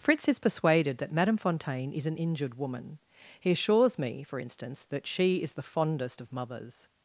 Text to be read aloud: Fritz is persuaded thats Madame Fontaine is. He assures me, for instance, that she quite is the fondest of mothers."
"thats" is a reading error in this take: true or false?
true